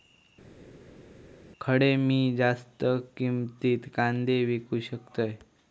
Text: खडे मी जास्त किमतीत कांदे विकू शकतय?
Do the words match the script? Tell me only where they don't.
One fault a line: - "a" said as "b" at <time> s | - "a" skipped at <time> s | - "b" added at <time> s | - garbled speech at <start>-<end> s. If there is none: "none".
none